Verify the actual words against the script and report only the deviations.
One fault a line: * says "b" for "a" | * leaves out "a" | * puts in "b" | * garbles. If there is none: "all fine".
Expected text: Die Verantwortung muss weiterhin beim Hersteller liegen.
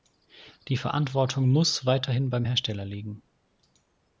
all fine